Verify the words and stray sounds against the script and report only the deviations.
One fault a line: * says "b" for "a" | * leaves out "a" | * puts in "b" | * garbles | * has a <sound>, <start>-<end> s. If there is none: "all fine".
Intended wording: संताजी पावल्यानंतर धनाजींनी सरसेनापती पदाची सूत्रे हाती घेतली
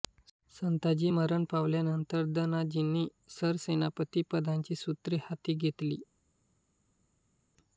* puts in "मरण"